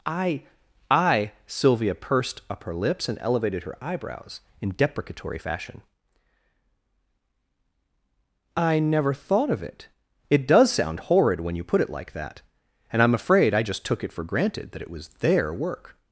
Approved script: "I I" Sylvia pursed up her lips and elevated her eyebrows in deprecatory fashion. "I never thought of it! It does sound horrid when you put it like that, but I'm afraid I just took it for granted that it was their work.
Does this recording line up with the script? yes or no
no